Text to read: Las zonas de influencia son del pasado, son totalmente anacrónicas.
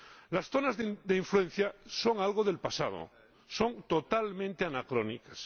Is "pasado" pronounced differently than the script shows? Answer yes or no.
no